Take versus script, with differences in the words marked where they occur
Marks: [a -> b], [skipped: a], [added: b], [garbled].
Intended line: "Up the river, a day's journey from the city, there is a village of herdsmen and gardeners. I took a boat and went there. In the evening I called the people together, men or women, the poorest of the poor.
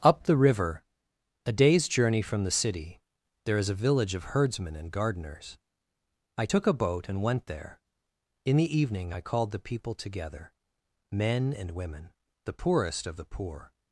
"Up the river, a day's journey from the city, there is a village of herdsmen and gardeners. I took a boat and went there. In the evening I called the people together, men [or -> and] women, the poorest of the poor.